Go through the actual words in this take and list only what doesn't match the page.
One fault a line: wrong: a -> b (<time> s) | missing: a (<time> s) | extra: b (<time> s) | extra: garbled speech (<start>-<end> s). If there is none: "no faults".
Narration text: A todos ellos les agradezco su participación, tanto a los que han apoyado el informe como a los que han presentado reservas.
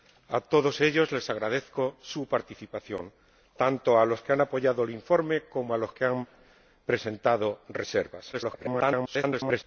extra: garbled speech (8.3-9.6 s)